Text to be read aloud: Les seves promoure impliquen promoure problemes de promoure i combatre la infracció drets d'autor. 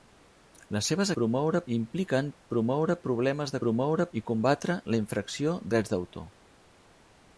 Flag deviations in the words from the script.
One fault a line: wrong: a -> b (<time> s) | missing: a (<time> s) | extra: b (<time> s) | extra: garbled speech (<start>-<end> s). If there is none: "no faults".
no faults